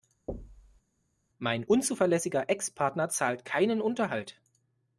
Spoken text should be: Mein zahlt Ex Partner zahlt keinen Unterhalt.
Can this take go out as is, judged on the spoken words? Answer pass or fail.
fail